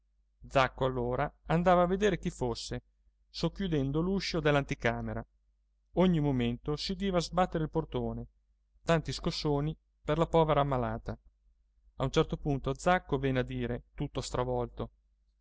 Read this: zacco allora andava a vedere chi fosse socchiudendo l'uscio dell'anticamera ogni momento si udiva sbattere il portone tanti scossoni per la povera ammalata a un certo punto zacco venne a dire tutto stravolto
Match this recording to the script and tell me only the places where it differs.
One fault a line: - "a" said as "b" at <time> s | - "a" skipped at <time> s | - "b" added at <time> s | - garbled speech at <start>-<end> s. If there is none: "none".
none